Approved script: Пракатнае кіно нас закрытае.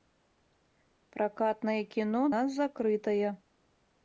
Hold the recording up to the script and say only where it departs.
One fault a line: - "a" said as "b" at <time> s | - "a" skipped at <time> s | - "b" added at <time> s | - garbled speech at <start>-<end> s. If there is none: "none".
none